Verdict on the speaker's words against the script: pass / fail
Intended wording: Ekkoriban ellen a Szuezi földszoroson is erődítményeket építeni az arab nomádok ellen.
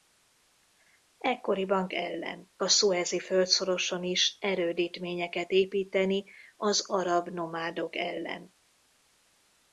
pass